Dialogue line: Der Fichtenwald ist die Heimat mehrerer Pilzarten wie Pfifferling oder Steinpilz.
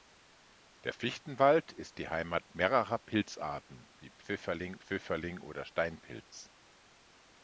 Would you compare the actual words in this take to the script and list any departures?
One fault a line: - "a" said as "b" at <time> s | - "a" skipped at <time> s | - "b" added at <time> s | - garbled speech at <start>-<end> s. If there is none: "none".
- "Pfifferling" added at 4.8 s